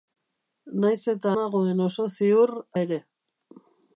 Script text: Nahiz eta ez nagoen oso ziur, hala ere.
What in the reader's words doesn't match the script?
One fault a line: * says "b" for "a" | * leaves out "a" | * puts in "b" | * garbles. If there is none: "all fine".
* leaves out "ez"
* leaves out "hala"